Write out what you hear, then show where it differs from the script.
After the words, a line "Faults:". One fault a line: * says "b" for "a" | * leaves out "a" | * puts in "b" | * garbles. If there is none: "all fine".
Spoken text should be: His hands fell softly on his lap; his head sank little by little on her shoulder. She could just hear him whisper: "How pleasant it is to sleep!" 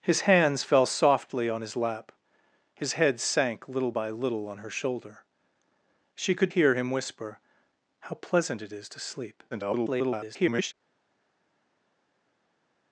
His hands fell softly on his lap; his head sank little by little on her shoulder. She could hear him whisper: "How pleasant it is to sleep!" [garbled]
Faults:
* leaves out "just"
* garbles